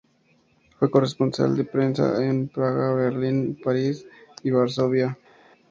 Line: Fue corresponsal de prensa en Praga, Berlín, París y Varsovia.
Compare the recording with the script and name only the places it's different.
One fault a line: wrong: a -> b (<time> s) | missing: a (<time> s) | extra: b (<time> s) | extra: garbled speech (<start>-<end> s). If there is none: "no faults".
no faults